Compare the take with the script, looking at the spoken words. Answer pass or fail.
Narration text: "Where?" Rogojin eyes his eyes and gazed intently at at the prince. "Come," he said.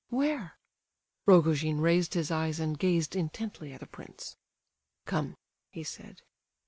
fail